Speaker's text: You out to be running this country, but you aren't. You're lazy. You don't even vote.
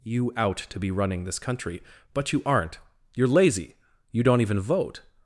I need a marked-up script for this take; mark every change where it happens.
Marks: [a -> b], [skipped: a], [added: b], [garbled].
You out to be running this country, but you aren't. You're lazy. You don't even vote.